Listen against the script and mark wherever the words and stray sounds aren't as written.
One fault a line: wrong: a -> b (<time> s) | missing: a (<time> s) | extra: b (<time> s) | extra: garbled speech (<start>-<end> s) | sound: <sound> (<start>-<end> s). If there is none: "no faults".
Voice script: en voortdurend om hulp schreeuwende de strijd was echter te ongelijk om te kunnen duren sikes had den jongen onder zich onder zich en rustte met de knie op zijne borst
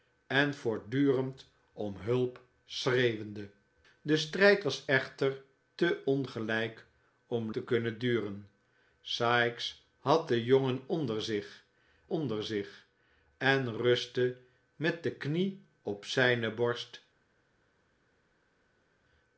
no faults